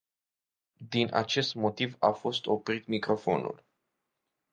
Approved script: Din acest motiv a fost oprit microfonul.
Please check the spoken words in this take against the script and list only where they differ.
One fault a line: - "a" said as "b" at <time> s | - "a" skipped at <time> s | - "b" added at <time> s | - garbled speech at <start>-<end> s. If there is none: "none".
none